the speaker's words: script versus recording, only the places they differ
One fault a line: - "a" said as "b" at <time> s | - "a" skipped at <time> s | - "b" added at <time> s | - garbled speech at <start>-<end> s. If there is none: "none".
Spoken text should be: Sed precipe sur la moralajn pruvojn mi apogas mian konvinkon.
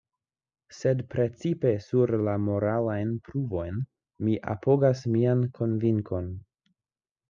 none